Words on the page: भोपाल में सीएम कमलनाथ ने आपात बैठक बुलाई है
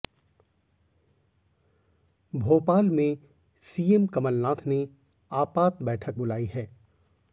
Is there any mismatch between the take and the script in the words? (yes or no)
no